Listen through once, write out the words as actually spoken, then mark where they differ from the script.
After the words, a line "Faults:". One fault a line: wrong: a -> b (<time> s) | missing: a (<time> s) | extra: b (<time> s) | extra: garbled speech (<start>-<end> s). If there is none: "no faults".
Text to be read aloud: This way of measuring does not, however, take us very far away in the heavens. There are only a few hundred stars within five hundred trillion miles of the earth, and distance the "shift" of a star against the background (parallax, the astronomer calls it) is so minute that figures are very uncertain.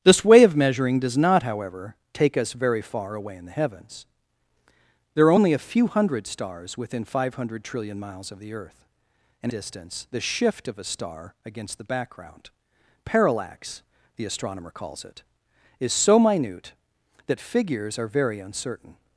This way of measuring does not, however, take us very far away in the heavens. There are only a few hundred stars within five hundred trillion miles of the earth, and distance the "shift" of a star against the background (parallax, the astronomer calls it) is so minute that figures are very uncertain.
Faults:
no faults